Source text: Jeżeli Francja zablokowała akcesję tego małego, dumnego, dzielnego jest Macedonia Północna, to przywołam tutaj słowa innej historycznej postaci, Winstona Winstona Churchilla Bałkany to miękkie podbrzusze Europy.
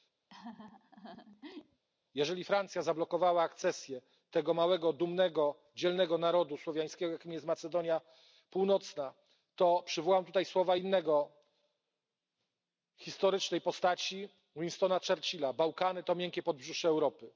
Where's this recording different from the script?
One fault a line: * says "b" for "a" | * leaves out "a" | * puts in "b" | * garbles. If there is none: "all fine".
* puts in "narodu słowiańskiego jakim"
* leaves out "Winstona"